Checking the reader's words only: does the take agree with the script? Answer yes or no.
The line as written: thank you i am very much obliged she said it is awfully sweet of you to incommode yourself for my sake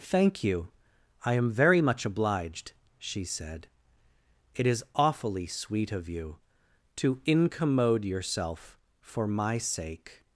yes